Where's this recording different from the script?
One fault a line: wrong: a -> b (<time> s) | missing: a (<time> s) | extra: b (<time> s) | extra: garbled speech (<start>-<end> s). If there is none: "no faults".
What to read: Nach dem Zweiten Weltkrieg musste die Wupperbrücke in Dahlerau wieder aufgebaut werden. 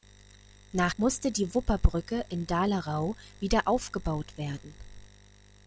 missing: dem Zweiten Weltkrieg (0.9 s)